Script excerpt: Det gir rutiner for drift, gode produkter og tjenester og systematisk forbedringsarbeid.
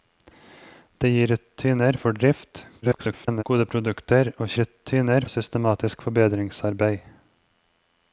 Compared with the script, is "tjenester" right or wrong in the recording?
wrong